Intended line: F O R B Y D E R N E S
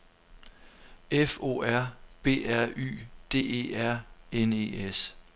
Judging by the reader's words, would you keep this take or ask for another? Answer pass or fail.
fail